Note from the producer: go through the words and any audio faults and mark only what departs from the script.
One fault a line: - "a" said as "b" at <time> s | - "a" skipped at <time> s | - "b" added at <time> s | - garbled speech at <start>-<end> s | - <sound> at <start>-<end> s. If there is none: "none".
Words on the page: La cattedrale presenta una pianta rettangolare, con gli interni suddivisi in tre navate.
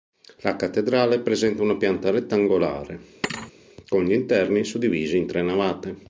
- thud at 3.2-3.5 s